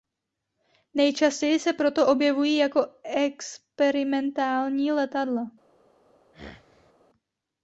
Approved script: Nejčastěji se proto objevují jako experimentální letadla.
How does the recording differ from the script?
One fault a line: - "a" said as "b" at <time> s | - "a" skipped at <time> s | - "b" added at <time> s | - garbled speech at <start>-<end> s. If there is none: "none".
none